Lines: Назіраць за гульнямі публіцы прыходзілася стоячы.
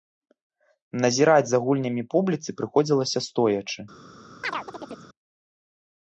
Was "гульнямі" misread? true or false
false